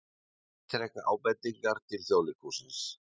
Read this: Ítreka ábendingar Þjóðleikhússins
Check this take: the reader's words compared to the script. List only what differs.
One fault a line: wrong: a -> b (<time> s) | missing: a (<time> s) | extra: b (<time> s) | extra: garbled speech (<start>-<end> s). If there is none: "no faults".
extra: til (1.9 s)